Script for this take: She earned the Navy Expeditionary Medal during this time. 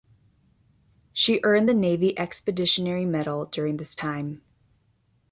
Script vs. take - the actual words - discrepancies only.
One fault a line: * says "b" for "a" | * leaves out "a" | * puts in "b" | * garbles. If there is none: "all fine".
all fine